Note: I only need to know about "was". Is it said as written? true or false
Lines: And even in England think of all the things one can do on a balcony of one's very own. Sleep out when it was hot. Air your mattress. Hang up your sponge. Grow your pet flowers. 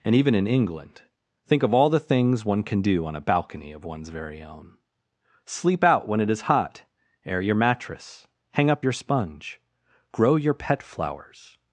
false